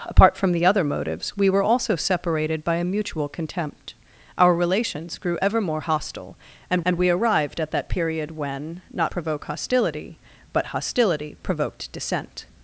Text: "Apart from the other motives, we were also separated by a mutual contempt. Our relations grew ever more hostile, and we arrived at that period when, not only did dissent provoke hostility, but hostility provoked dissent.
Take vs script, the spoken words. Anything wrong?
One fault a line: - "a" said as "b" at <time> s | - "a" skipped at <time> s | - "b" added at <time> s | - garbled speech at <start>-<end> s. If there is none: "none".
- "and" added at 6.9 s
- "only did dissent" skipped at 9.1 s